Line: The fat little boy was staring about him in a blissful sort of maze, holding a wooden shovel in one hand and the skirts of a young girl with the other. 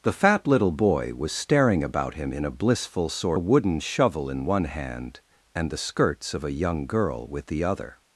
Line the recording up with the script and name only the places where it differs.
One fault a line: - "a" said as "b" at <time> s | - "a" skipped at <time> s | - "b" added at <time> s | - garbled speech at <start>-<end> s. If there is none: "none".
- "of maze holding" skipped at 3.4 s